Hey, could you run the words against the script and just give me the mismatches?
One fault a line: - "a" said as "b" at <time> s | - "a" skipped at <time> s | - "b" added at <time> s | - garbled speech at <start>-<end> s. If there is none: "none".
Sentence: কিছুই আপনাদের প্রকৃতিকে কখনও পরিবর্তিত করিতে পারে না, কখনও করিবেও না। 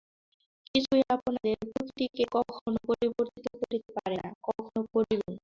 none